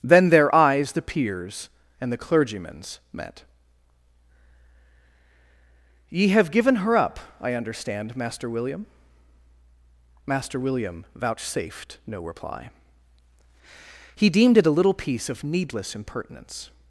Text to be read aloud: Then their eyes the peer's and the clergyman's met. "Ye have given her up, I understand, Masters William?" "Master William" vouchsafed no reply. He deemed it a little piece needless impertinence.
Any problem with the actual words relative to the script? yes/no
yes